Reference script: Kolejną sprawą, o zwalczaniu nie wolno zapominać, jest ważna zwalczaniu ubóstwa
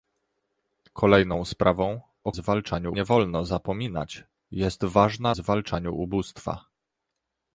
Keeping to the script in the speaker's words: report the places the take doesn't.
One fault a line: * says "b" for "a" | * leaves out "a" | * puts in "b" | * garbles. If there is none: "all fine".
all fine